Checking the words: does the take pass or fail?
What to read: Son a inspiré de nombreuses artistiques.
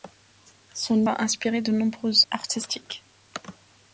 pass